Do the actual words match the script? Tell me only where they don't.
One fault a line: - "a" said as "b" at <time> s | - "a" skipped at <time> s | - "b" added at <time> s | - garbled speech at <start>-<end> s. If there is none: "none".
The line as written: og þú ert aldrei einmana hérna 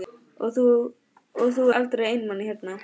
- "ert" skipped at 1.7 s